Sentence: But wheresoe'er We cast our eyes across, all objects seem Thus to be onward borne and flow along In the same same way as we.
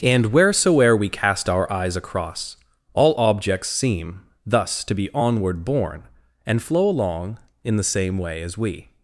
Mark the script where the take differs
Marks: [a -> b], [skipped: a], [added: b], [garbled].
[But -> And] wheresoe'er We cast our eyes across, all objects seem Thus to be onward borne and flow along In the same [skipped: same] way as we.